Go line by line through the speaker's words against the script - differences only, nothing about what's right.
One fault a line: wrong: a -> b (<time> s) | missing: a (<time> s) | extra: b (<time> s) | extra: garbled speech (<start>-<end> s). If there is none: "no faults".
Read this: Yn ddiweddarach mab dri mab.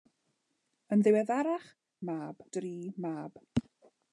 no faults